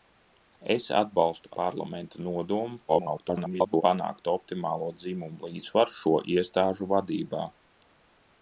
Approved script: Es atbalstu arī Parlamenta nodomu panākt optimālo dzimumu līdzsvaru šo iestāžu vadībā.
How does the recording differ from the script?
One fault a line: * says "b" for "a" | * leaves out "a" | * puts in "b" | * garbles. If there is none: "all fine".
* leaves out "arī"
* garbles